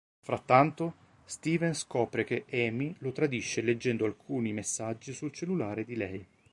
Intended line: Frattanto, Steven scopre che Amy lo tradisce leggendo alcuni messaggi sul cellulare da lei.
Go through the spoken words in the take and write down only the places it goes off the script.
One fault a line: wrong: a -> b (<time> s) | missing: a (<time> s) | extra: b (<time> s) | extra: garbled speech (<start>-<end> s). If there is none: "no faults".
wrong: da -> di (5.8 s)